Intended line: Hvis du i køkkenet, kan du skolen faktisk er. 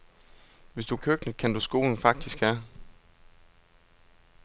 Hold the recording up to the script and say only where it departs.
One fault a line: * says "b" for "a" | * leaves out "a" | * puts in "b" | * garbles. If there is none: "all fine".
all fine